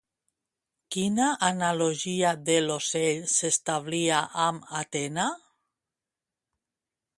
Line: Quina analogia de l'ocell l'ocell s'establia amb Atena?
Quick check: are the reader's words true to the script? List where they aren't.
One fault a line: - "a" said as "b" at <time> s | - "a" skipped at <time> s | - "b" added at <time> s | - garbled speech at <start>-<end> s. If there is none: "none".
- "l'ocell" skipped at 3.3 s